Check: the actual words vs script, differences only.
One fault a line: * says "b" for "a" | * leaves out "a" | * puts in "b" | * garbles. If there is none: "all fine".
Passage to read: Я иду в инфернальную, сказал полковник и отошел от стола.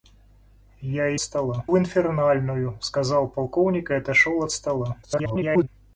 * says "стола" for "иду"
* garbles